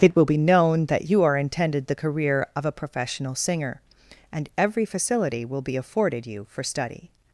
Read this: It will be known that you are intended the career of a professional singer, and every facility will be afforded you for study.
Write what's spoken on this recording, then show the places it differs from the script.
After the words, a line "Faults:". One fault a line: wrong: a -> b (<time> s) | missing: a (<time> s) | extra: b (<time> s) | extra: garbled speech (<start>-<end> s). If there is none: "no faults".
It will be known that you are intended the career of a professional singer, and every facility will be afforded you for study.
Faults:
no faults